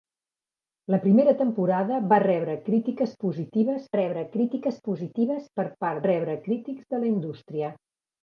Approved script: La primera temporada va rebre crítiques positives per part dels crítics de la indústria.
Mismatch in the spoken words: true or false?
true